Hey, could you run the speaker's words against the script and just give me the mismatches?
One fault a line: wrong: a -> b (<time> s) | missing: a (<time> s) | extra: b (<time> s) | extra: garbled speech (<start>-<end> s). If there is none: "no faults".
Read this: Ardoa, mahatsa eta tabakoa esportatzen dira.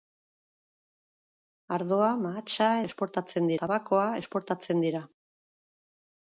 wrong: eta -> esportatzen (2.9 s)